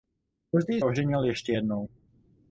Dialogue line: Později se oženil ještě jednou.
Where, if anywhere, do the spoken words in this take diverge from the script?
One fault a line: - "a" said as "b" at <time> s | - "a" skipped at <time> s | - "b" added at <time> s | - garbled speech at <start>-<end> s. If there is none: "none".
- "se" skipped at 0.8 s